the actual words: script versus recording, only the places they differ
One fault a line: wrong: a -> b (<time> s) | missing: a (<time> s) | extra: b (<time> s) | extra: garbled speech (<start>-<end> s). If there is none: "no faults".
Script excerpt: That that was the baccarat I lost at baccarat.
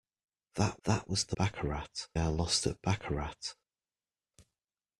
no faults